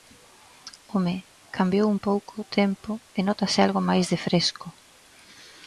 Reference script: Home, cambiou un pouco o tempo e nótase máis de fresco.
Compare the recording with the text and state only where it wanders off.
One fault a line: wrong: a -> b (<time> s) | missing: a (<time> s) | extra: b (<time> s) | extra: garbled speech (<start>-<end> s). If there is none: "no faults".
extra: algo (3.7 s)